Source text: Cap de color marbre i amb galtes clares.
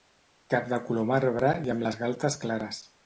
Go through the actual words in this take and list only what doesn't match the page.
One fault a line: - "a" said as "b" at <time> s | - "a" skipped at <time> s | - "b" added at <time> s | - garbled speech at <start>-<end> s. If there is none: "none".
- "les" added at 1.9 s